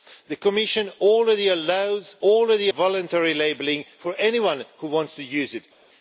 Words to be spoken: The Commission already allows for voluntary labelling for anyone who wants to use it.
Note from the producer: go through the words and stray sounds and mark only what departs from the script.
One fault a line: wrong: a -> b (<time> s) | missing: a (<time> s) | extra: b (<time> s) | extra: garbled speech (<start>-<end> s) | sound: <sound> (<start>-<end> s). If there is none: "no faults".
wrong: for -> already (2.2 s)